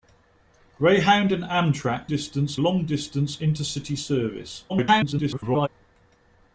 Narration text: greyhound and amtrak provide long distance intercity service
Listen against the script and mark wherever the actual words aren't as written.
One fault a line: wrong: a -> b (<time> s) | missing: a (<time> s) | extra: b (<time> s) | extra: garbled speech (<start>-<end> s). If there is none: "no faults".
wrong: provide -> distance (2.1 s)
extra: garbled speech (4.7-5.7 s)